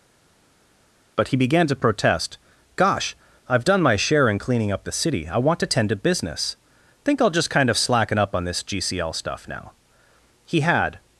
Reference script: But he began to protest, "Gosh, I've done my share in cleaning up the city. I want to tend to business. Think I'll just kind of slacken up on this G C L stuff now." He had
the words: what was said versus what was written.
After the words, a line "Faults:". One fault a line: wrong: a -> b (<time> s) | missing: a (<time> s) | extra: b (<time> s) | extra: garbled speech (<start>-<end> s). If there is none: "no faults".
But he began to protest, "Gosh, I've done my share in cleaning up the city. I want to tend to business. Think I'll just kind of slacken up on this G C L stuff now." He had
Faults:
no faults